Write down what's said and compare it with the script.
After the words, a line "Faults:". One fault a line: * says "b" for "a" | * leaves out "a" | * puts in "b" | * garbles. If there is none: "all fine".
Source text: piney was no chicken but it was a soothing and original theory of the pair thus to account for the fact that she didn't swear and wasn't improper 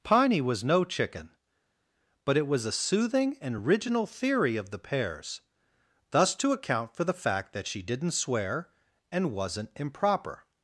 piney was no chicken but it was a soothing and original theory of the pairs thus to account for the fact that she didn't swear and wasn't improper
Faults:
* says "pairs" for "pair"